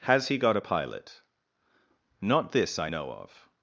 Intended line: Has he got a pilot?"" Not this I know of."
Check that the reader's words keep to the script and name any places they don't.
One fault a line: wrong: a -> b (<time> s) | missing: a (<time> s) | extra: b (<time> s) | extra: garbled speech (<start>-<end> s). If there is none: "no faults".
no faults